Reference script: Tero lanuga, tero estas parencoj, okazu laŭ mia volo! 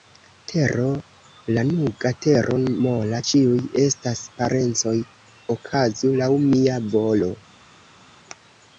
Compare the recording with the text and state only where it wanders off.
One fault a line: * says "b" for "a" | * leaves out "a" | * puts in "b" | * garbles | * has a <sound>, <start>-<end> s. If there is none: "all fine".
* puts in "mola ĉiuj"